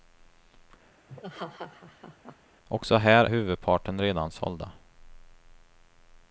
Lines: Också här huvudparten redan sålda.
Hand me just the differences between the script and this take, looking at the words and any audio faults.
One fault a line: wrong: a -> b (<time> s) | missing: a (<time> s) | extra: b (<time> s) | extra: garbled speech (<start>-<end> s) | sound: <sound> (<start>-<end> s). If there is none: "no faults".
sound: laugh (1.1-2.4 s)